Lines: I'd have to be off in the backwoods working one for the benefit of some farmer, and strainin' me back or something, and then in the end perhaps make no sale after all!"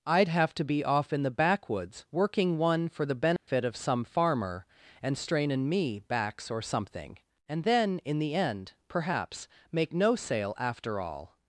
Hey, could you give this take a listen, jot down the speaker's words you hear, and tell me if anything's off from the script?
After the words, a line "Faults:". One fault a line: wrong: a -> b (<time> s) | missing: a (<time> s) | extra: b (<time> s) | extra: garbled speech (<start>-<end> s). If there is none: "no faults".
I'd have to be off in the backwoods working one for the benefit of some farmer, and strainin' me backs or something, and then in the end perhaps make no sale after all!"
Faults:
wrong: back -> backs (6.0 s)